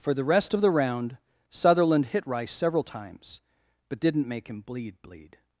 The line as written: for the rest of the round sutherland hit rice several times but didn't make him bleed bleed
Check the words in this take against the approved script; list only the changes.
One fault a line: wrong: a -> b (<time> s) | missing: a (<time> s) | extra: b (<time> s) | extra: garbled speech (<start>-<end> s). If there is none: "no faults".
no faults